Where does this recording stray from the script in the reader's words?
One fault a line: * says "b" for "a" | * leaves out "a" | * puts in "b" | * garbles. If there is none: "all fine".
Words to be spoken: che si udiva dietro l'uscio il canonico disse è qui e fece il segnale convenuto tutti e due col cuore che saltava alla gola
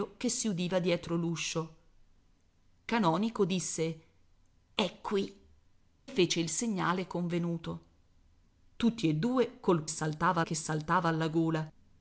* leaves out "il"
* leaves out "e"
* says "saltava" for "cuore"